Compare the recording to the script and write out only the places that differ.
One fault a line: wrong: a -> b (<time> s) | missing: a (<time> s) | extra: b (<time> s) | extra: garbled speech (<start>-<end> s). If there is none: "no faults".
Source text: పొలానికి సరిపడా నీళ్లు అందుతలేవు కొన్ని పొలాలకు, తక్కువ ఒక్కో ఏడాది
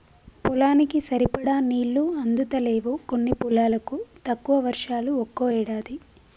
extra: వర్షాలు (4.7 s)